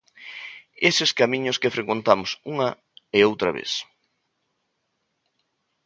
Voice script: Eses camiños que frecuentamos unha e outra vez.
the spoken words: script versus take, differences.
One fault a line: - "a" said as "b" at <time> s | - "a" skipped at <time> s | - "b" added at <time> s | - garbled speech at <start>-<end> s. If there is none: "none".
none